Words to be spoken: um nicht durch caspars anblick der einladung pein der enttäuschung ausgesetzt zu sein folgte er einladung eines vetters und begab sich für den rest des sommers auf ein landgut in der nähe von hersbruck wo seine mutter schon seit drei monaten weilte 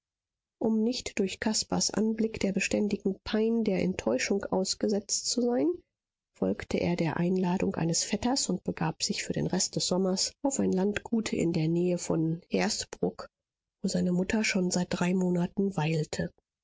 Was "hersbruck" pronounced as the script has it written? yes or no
yes